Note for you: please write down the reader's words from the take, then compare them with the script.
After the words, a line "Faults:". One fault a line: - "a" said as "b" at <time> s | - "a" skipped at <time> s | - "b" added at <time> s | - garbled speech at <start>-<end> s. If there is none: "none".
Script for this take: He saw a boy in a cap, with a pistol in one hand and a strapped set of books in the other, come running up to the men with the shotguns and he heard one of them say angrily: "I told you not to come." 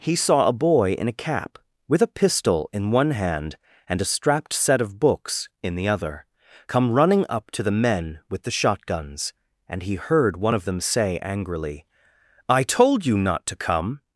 He saw a boy in a cap, with a pistol in one hand and a strapped set of books in the other, come running up to the men with the shotguns and he heard one of them say angrily: "I told you not to come."
Faults:
none